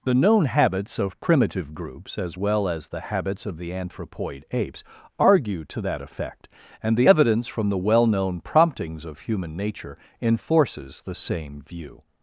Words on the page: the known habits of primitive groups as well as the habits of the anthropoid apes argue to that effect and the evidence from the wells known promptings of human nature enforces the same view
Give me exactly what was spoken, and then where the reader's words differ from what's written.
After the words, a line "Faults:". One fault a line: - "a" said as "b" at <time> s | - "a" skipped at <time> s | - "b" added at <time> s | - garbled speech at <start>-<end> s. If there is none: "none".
the known habits of primitive groups as well as the habits of the anthropoid apes argue to that effect and the evidence from the well known promptings of human nature enforces the same view
Faults:
- "wells" said as "well" at 7.8 s